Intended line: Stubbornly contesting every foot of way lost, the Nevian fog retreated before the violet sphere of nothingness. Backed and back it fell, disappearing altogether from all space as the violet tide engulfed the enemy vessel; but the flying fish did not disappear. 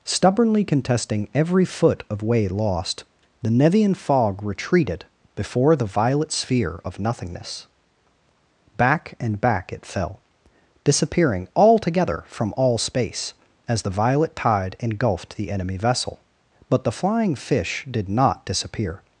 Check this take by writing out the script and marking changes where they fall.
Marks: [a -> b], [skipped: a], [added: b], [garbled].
Stubbornly contesting every foot of way lost, the Nevian fog retreated before the violet sphere of nothingness. [Backed -> Back] and back it fell, disappearing altogether from all space as the violet tide engulfed the enemy vessel; but the flying fish did not disappear.